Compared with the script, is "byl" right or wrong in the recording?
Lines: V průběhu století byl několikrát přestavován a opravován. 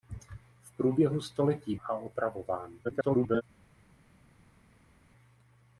wrong